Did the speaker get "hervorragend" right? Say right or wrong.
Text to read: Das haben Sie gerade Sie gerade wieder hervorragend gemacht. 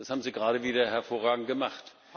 right